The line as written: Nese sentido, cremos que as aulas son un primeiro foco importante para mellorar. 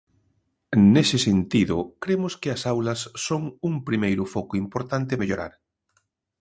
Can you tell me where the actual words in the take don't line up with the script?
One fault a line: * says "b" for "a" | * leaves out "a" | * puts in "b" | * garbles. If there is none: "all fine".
* leaves out "para"